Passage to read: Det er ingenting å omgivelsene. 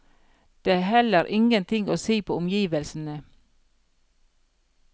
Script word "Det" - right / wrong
right